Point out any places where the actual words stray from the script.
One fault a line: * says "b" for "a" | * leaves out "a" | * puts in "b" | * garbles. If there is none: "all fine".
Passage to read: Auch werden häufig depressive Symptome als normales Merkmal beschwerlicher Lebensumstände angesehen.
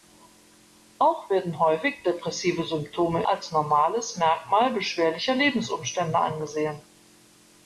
all fine